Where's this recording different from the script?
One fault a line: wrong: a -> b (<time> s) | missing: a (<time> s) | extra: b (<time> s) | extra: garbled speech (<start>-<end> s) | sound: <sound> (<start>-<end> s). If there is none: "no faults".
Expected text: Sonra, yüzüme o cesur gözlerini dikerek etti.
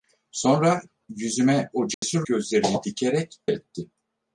sound: dropout (1.9-2.0 s)